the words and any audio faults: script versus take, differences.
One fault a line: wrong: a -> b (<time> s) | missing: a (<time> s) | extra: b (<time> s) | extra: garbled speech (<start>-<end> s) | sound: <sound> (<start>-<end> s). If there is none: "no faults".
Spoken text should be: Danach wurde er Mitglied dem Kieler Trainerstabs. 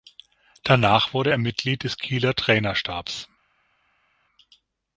wrong: dem -> des (1.8 s)